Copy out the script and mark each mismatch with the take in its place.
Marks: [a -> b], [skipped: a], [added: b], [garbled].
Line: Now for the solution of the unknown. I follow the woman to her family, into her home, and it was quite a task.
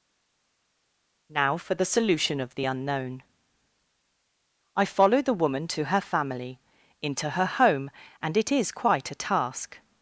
Now for the solution of the unknown. I follow the woman to her family, into her home, and it [was -> is] quite a task.